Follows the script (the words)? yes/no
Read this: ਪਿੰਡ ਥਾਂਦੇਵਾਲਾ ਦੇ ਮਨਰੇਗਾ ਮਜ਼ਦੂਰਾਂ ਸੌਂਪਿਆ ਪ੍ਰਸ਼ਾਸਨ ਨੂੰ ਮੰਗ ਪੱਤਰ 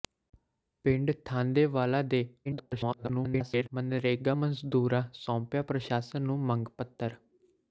no